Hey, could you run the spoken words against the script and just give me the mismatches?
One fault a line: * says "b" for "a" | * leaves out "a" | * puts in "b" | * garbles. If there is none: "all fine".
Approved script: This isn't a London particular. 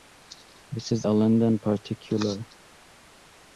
* says "is" for "isn't"